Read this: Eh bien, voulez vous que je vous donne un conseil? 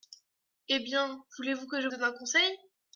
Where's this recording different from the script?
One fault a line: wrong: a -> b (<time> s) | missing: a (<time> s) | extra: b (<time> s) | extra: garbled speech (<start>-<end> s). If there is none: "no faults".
missing: vous (1.9 s)